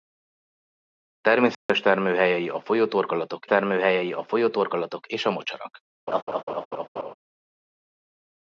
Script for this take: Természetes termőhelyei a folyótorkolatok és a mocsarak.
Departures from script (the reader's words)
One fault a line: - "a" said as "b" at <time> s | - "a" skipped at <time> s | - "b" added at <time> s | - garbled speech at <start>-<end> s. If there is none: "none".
- "termőhelyei a folyótorkolatok" added at 3.4 s